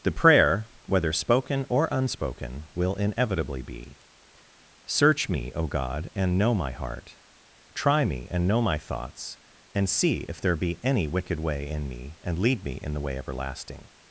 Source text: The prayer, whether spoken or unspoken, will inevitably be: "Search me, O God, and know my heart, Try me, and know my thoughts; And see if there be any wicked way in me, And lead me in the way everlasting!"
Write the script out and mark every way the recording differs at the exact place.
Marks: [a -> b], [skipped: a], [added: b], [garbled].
The prayer, whether spoken or unspoken, will inevitably be: "Search me, O God, and know my heart, Try me, and know my thoughts; And see if there be any wicked way in me, And lead me in the way everlasting!"